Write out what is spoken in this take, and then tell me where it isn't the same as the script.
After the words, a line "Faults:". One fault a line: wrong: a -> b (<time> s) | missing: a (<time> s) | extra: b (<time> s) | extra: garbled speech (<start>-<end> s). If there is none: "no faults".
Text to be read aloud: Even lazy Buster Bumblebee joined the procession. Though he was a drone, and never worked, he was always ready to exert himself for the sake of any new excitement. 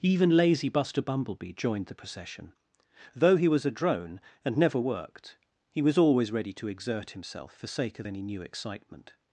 Even lazy Buster Bumblebee joined the procession. Though he was a drone, and never worked, he was always ready to exert himself for sake of any new excitement.
Faults:
missing: the (7.7 s)